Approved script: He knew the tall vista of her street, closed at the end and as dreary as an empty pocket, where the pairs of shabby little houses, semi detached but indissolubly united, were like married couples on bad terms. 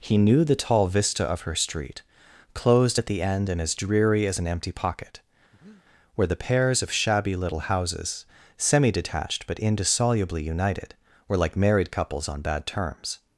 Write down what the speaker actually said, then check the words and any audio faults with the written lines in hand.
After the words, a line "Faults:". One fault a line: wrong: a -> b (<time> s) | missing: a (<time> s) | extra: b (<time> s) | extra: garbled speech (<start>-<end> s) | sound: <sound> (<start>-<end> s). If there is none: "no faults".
He knew the tall vista of her street, closed at the end and as dreary as an empty pocket, where the pairs of shabby little houses, semi detached but indissolubly united, were like married couples on bad terms.
Faults:
sound: breath (5.5-5.9 s)